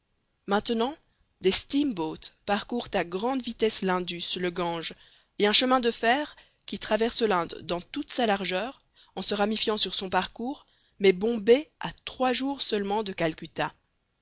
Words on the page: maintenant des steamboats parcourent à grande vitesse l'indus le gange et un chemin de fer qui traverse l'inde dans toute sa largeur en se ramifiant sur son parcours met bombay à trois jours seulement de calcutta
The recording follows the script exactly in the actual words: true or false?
true